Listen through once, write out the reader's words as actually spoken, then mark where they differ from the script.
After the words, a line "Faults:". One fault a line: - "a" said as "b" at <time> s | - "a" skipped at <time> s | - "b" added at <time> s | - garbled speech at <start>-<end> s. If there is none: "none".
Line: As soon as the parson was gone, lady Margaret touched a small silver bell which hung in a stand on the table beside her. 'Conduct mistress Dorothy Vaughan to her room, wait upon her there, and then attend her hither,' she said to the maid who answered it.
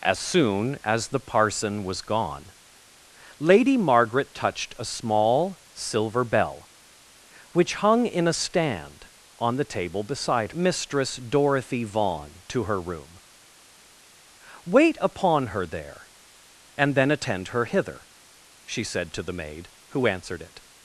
As soon as the parson was gone, lady Margaret touched a small silver bell which hung in a stand on the table beside mistress Dorothy Vaughan to her room, wait upon her there, and then attend her hither,' she said to the maid who answered it.
Faults:
- "her Conduct" skipped at 10.5 s